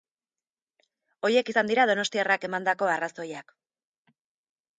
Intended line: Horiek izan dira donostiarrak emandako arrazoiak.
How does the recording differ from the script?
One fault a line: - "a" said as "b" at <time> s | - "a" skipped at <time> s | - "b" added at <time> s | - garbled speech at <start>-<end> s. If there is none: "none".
none